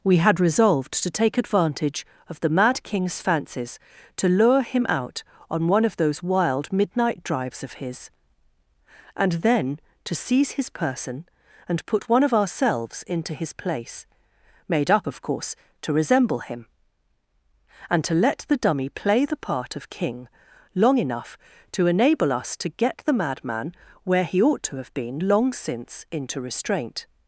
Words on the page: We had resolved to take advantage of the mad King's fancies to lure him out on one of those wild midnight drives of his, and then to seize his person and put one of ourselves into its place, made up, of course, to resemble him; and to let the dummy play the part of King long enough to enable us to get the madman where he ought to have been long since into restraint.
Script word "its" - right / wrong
wrong